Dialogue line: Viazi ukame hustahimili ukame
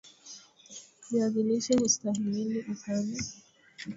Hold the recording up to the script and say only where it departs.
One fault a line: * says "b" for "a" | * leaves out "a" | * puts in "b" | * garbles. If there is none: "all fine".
* says "lishe" for "ukame"